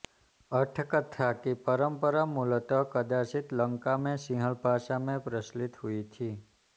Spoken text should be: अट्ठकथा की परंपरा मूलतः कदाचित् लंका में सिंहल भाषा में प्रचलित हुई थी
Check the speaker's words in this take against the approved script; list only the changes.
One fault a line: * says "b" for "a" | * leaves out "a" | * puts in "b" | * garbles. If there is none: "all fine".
all fine